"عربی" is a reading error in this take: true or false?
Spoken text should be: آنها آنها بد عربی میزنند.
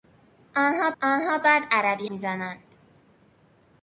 false